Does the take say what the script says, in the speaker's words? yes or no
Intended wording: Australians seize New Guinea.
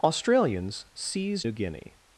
yes